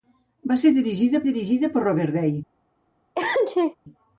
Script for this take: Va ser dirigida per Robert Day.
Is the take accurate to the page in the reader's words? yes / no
no